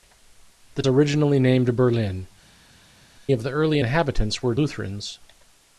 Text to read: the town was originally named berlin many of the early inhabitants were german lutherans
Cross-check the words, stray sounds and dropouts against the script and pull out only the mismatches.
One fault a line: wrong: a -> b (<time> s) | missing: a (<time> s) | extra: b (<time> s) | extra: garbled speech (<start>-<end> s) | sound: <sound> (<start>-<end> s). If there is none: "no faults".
missing: town was (0.8 s)
missing: many (2.3 s)
missing: german (4.5 s)